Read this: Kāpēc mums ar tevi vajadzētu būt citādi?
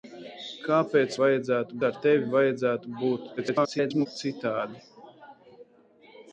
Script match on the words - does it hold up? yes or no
no